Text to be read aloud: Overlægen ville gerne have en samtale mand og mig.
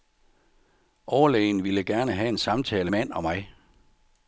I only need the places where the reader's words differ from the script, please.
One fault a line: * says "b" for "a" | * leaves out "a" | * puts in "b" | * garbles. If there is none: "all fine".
all fine